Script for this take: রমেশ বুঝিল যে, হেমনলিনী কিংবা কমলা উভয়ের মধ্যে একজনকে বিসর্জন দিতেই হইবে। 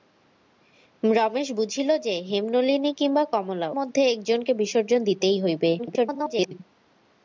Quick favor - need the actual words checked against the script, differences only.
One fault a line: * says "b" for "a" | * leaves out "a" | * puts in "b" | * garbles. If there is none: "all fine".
* leaves out "উভয়ের"
* garbles